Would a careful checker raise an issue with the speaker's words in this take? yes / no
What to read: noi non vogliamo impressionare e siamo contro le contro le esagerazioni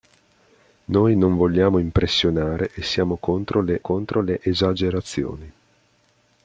no